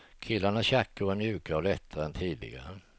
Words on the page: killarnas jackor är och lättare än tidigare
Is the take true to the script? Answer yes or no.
no